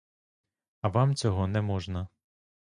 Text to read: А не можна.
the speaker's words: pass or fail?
fail